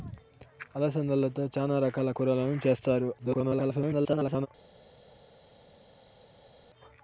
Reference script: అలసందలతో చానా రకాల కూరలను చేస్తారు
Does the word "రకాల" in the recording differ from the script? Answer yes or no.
no